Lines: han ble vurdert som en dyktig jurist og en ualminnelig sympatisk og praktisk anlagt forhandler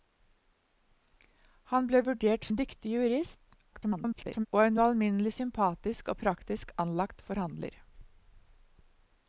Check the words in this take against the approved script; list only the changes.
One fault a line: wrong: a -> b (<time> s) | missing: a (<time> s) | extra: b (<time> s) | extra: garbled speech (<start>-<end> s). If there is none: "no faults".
missing: som (2.5 s)
extra: garbled speech (3.7-4.5 s)